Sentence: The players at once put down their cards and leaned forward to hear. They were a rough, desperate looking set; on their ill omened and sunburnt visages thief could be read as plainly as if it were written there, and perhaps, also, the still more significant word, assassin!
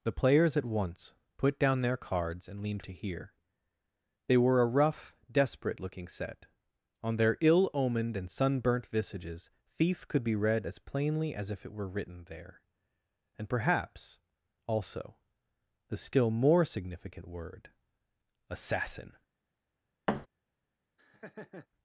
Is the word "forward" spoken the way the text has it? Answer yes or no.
no